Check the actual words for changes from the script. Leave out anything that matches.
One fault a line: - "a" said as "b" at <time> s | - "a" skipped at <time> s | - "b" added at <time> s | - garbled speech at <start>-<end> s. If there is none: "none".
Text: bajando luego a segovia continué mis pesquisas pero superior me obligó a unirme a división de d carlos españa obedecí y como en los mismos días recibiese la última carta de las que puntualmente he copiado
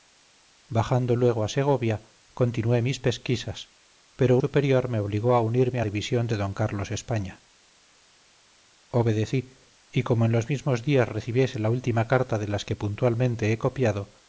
none